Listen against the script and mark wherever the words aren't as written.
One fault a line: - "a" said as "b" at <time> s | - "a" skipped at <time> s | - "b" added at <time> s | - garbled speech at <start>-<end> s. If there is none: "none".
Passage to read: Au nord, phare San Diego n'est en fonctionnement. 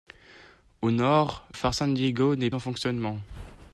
none